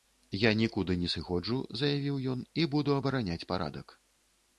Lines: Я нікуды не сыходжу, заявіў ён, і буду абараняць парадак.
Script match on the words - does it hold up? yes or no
yes